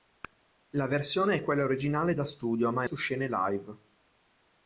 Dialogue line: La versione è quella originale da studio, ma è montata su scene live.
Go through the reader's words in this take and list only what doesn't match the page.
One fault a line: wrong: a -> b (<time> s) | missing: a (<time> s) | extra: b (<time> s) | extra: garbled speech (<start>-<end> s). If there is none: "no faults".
missing: montata (2.9 s)